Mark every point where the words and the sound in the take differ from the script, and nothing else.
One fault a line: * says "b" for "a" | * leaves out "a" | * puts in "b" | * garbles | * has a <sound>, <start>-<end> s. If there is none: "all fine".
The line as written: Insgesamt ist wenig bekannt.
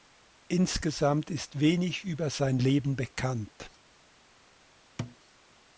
* puts in "über sein Leben"
* has a thud, 5.0-5.2 s